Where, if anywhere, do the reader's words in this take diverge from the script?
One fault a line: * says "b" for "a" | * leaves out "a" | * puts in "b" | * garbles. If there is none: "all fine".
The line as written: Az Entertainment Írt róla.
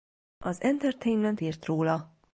all fine